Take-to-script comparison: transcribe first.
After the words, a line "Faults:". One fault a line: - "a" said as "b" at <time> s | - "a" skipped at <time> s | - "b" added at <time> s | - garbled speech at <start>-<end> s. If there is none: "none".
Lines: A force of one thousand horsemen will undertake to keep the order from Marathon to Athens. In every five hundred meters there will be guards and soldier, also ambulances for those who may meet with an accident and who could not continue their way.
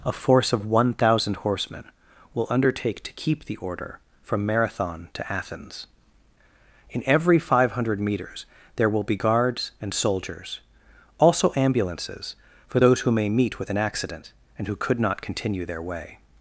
A force of one thousand horsemen will undertake to keep the order from Marathon to Athens. In every five hundred meters there will be guards and soldiers, also ambulances for those who may meet with an accident and who could not continue their way.
Faults:
- "soldier" said as "soldiers" at 9.9 s